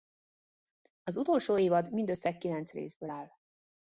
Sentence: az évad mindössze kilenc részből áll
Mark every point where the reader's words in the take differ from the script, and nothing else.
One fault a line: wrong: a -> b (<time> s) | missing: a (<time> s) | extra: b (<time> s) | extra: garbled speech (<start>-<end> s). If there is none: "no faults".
extra: utolsó (1.2 s)